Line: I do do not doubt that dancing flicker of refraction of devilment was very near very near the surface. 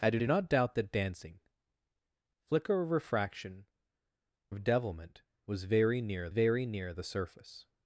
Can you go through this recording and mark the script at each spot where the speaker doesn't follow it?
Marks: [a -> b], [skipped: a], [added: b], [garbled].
I do do not doubt that dancing flicker of refraction of devilment was very near very near the surface.